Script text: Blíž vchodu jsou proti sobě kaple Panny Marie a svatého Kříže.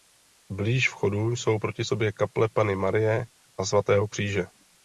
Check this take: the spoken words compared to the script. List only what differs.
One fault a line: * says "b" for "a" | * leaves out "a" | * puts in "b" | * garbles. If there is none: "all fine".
all fine